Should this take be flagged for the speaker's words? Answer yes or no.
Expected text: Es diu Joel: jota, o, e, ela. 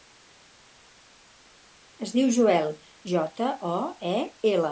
no